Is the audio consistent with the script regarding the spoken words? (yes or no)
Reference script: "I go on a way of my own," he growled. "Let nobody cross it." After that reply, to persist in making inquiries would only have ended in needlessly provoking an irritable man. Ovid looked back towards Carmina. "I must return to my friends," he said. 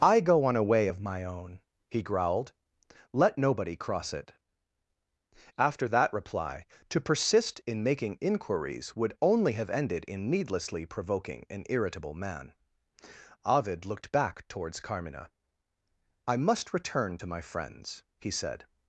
yes